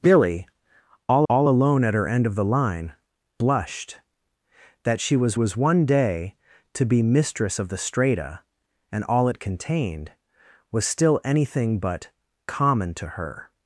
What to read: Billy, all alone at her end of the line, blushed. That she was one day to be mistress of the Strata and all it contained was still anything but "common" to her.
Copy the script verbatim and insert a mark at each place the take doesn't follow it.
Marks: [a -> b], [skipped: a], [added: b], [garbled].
Billy, all [added: all] alone at her end of the line, blushed. That she was [added: was] one day to be mistress of the Strata and all it contained was still anything but "common" to her.